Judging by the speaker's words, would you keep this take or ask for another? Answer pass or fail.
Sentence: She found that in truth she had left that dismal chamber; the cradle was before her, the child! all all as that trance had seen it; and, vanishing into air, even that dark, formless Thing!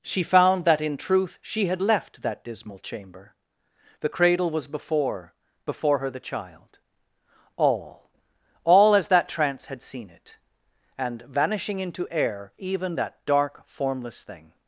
fail